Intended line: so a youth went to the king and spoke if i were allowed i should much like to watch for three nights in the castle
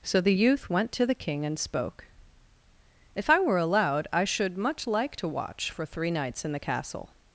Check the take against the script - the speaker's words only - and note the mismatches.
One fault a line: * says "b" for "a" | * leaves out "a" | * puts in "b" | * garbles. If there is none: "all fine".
* says "the" for "a"